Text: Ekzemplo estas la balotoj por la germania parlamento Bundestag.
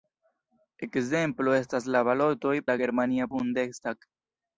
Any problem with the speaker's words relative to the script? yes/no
yes